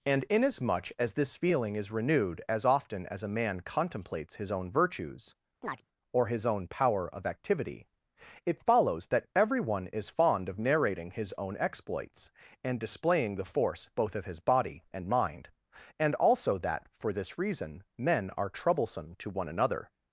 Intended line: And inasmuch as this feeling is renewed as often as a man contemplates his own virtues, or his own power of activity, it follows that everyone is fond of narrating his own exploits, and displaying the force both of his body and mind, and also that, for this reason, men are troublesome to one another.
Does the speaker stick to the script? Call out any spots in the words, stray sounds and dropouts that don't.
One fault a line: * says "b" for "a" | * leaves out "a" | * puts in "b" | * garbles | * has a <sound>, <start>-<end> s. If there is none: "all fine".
* has a chirp, 5.6-5.8 s